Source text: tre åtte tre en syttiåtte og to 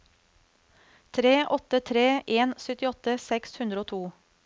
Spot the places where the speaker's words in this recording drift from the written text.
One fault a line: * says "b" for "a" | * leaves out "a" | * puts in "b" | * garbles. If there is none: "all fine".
* puts in "seks hundre"